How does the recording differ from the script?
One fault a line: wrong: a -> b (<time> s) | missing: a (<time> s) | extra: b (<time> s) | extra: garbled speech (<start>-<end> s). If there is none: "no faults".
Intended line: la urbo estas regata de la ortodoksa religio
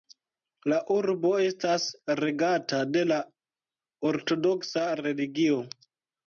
no faults